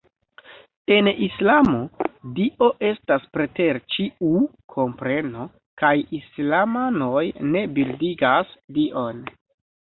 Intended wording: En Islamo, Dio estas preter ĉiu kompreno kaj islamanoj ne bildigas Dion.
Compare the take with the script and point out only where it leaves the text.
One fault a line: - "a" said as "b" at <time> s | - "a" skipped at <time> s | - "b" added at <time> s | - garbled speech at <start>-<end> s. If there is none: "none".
none